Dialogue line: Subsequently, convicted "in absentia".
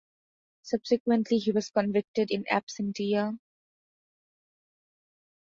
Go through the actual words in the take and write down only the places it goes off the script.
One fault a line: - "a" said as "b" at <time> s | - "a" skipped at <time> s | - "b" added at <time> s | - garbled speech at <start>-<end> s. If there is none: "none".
- "he was" added at 1.4 s